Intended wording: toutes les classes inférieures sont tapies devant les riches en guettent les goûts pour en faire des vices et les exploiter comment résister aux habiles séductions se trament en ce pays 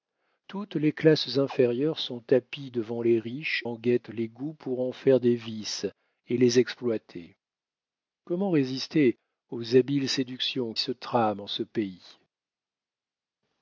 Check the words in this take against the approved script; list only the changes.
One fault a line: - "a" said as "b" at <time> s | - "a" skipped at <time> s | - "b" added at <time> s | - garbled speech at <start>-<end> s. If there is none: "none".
none